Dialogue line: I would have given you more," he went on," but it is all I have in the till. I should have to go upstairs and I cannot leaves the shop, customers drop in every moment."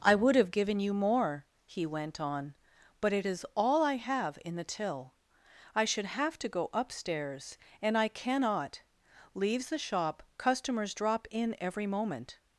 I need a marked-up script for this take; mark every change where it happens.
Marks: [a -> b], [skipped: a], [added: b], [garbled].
I would have given you more," he went on," but it is all I have in the till. I should have to go upstairs and I cannot leaves the shop, customers drop in every moment."